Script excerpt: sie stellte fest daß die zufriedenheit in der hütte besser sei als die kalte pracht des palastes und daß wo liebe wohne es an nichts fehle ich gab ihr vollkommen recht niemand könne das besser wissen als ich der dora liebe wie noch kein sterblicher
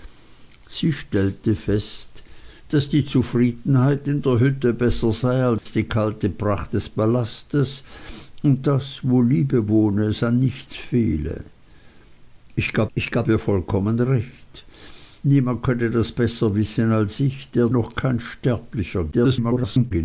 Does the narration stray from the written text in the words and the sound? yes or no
yes